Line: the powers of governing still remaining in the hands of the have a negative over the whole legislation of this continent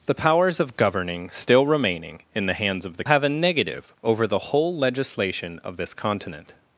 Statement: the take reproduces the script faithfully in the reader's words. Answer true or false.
true